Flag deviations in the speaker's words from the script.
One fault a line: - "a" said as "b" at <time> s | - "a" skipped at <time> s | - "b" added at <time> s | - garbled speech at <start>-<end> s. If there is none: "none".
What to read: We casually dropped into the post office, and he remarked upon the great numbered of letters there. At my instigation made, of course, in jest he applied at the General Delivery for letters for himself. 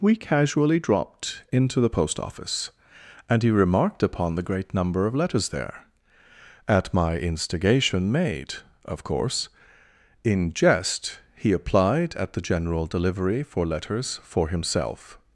- "numbered" said as "number" at 4.7 s